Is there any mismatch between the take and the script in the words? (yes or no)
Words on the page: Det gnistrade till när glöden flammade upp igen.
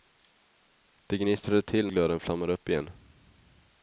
yes